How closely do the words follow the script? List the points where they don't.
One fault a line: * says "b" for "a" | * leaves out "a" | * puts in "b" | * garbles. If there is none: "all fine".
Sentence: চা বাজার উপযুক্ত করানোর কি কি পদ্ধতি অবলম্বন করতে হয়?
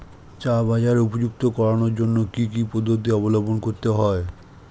* puts in "জন্য"